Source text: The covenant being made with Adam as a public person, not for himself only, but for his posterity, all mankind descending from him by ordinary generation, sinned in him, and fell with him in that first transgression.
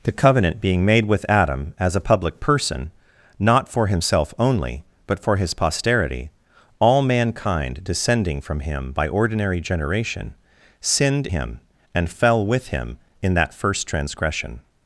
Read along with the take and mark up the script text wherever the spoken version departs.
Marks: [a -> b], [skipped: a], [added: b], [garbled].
The covenant being made with Adam as a public person, not for himself only, but for his posterity, all mankind descending from him by ordinary generation, sinned [skipped: in] him, and fell with him in that first transgression.